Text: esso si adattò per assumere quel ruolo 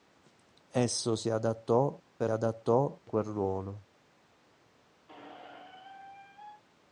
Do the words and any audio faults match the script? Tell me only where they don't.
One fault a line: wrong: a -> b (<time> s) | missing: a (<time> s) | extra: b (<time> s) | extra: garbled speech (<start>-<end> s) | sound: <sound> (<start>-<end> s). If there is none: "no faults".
wrong: assumere -> adattò (2.3 s)
sound: squeak (5.1-6.6 s)